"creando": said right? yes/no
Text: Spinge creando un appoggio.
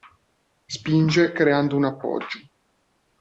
yes